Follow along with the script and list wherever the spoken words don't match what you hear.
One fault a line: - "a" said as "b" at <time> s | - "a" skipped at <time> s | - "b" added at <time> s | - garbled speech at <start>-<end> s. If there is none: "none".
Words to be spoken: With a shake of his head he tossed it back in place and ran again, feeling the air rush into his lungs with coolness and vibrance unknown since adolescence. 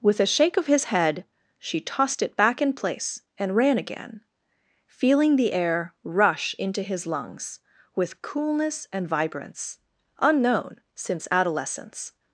- "he" said as "she" at 1.6 s